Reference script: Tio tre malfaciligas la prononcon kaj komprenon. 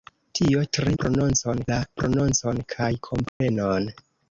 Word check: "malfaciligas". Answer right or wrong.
wrong